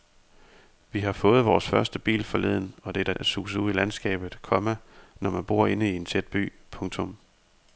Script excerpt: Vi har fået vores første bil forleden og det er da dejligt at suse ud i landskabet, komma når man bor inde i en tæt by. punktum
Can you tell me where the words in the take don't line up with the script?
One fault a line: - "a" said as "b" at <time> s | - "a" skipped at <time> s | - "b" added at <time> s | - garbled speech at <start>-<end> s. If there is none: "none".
- "da dejligt" skipped at 3.1 s